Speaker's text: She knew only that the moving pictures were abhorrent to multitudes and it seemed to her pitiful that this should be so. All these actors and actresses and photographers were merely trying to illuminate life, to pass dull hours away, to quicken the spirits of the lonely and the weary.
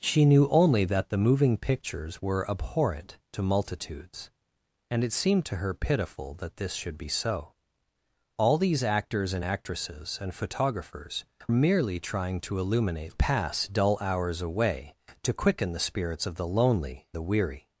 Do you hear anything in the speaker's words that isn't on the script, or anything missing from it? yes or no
yes